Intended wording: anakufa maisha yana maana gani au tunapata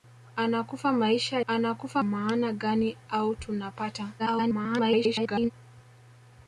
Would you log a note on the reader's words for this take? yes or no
yes